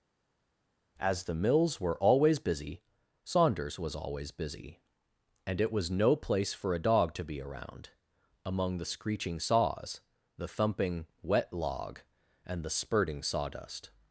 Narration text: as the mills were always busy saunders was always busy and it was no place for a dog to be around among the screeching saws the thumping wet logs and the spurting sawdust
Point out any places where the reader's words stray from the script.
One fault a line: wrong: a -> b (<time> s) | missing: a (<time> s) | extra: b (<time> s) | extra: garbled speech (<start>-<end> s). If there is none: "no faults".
wrong: logs -> log (11.5 s)